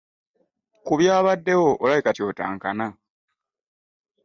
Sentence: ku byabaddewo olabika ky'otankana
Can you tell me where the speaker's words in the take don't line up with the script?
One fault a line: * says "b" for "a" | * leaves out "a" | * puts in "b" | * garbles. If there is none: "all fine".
all fine